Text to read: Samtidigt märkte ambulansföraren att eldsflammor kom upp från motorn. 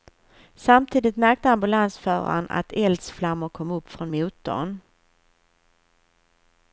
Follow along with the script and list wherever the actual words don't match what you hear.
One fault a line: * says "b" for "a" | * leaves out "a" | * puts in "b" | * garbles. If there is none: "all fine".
all fine